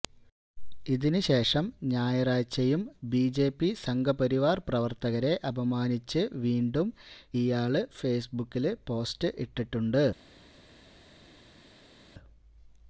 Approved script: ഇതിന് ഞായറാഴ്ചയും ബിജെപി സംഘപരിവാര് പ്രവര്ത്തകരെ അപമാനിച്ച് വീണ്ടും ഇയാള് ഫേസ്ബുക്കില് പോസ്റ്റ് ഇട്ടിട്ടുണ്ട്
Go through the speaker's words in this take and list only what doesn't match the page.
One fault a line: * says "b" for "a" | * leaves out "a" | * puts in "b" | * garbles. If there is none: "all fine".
* puts in "ശേഷം"